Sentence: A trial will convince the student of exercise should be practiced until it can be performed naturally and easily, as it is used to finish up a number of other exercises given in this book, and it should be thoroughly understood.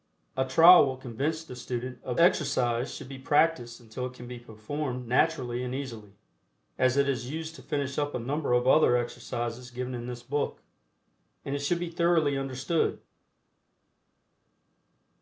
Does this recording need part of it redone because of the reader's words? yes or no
no